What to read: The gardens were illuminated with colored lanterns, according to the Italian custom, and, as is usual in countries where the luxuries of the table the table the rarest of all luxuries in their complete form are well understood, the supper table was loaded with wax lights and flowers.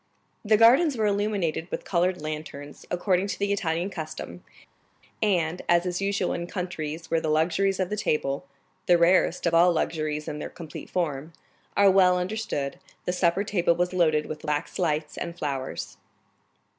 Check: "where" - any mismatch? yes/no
no